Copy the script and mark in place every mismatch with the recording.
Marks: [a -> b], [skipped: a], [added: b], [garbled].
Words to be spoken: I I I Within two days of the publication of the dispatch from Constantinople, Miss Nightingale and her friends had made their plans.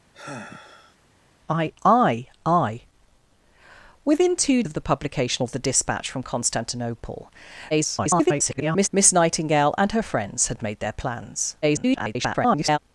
I I I Within two [skipped: days] of the publication of the dispatch from Constantinople, [garbled] Miss Nightingale and her friends had made their plans. [garbled]